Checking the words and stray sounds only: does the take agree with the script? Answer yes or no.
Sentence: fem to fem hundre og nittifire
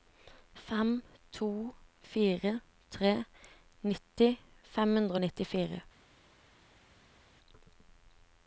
no